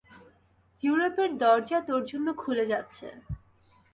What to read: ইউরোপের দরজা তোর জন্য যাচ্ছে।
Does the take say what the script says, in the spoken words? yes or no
no